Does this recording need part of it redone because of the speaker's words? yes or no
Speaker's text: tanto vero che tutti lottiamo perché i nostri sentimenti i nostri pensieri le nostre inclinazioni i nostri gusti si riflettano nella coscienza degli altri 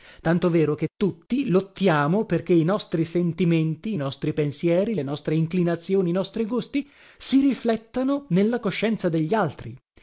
no